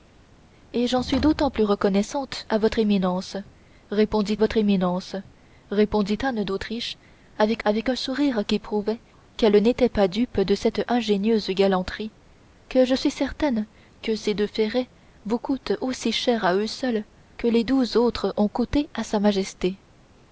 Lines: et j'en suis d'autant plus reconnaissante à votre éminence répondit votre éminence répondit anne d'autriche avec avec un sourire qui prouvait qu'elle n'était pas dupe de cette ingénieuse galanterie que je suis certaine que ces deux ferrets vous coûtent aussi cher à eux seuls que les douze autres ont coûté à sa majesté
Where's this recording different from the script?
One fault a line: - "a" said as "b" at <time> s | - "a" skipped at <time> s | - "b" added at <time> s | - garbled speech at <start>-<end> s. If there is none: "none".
none